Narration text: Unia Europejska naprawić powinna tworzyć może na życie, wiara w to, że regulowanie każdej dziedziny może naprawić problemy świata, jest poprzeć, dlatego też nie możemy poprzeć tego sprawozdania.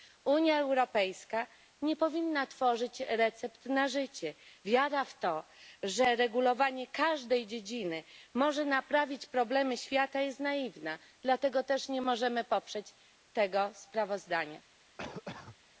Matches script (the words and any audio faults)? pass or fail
fail